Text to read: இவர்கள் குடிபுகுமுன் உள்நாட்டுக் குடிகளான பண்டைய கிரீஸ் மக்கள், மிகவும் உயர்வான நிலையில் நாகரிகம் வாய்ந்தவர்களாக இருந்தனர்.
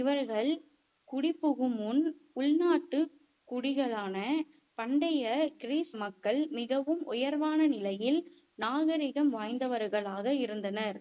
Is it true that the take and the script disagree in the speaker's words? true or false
false